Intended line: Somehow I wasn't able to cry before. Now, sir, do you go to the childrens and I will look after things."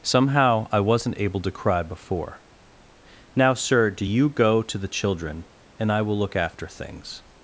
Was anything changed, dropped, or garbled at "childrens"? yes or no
yes